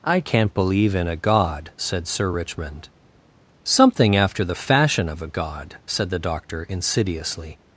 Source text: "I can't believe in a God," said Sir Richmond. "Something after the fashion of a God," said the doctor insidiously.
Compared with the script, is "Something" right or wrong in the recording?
right